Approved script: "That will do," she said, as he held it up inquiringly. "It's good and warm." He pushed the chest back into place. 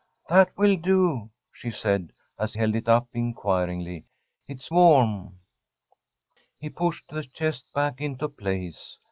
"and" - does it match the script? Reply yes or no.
no